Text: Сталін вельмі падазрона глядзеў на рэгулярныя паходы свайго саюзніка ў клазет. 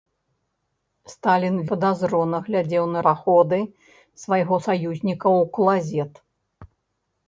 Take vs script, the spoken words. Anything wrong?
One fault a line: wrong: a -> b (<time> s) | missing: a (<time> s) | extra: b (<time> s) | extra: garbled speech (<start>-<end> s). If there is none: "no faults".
missing: вельмі (1.6 s)
missing: рэгулярныя (3.0 s)